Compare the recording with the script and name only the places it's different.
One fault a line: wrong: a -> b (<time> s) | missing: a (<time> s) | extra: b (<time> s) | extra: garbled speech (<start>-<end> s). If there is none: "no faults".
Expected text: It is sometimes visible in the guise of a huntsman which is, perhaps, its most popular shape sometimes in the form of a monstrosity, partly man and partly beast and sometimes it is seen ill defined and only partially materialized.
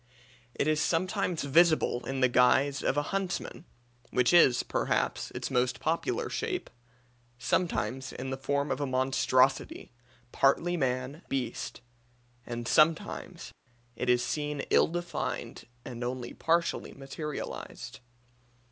missing: and partly (11.2 s)